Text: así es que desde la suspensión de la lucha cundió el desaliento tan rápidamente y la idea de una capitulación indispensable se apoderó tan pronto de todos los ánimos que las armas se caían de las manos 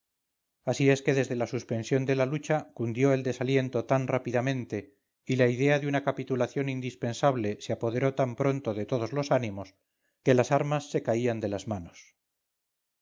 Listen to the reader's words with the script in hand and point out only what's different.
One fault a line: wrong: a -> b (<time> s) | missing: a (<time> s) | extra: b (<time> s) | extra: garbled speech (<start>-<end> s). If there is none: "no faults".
no faults